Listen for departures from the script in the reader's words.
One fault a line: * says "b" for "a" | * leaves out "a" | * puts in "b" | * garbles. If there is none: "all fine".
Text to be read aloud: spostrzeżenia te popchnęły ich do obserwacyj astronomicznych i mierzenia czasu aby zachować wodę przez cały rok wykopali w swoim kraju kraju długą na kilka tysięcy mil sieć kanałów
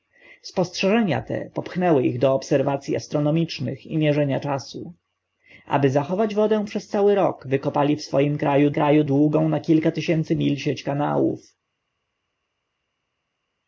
all fine